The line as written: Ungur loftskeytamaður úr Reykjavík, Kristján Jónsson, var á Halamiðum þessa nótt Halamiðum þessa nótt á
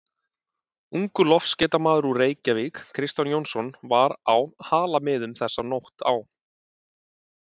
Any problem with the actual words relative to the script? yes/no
yes